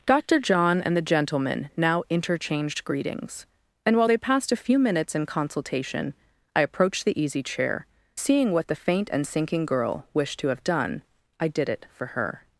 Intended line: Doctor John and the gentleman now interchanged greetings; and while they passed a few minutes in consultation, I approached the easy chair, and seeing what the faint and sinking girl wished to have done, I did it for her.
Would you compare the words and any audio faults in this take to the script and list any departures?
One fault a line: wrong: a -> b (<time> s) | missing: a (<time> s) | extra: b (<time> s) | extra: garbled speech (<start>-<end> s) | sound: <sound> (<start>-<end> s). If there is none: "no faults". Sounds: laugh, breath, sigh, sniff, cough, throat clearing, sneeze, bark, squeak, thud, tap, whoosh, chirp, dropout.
missing: and (7.8 s)